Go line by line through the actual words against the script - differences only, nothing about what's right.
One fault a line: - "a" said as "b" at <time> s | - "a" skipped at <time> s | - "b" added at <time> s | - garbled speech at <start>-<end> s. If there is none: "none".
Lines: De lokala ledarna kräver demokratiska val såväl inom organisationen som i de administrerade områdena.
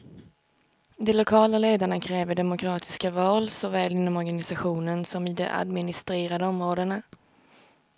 none